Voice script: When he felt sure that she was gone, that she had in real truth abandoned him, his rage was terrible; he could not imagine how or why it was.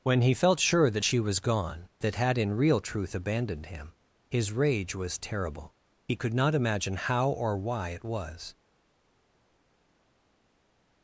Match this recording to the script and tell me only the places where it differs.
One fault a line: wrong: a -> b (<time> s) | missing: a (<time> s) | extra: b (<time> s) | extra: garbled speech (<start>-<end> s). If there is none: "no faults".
missing: she (2.1 s)